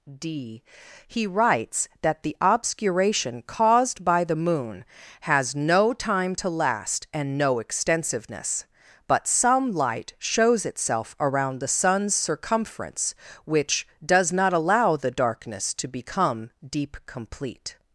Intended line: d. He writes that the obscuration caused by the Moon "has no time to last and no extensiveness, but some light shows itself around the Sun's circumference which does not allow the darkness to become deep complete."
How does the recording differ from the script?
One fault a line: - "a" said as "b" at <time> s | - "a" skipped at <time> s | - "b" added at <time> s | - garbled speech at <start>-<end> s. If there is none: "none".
none